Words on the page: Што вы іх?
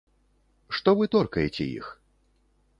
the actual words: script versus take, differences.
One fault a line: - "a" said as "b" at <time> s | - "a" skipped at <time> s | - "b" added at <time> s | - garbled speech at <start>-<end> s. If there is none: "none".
- "торкаеце" added at 1.2 s